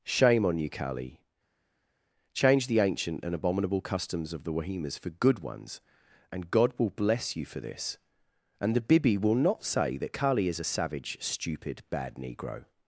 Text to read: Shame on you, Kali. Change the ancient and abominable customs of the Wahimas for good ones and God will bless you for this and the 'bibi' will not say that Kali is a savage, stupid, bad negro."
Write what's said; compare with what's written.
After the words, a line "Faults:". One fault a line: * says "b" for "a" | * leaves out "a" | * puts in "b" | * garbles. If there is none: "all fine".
Shame on you, Kali. Change the ancient and abominable customs of the Wahimas for good ones and God will bless you for this and the 'bibi' will not say that Kali is a savage, stupid, bad negro."
Faults:
all fine